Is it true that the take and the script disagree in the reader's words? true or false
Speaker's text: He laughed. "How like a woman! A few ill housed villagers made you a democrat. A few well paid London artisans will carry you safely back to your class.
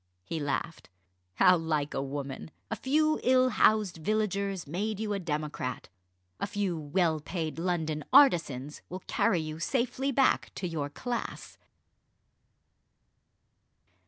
false